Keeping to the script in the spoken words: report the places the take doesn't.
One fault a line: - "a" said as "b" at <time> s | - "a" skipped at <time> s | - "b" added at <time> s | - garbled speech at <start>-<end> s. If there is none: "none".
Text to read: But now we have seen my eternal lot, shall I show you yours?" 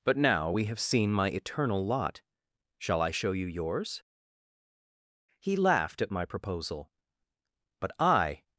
- "He laughed at my proposal but I" added at 5.4 s